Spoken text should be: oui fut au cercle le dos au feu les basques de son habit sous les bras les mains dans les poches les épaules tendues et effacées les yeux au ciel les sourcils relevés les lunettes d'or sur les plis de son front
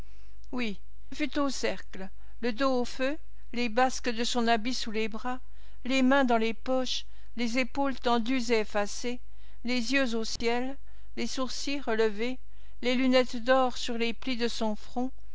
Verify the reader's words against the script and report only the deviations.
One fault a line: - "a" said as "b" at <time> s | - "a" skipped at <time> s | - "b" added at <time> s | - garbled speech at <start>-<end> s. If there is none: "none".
none